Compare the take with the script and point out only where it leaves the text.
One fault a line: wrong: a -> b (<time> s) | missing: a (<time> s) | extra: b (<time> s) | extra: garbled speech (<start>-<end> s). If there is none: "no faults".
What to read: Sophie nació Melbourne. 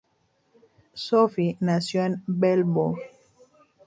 extra: en (2.0 s)